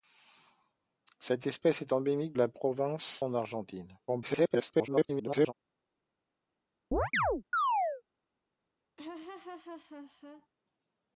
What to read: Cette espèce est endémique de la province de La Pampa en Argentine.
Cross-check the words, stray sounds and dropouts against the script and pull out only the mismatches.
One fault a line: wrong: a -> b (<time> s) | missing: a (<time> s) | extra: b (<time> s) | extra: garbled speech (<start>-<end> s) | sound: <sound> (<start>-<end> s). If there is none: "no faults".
missing: de (2.3 s)
missing: de La Pampa (3.3 s)
extra: garbled speech (4.1-5.5 s)
sound: chirp (6.9-8.0 s)
sound: laugh (9.0-10.5 s)